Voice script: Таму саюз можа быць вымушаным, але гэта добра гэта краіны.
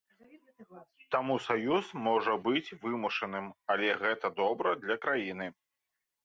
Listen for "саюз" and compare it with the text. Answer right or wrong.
right